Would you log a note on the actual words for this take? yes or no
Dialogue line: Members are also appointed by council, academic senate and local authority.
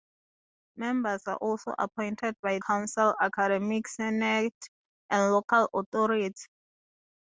no